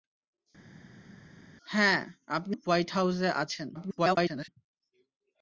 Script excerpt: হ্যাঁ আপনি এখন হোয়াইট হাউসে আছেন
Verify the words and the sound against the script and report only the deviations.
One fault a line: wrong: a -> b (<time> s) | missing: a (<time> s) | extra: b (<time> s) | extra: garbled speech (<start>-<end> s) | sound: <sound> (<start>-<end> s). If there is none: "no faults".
missing: এখন (2.5 s)
extra: garbled speech (3.7-4.5 s)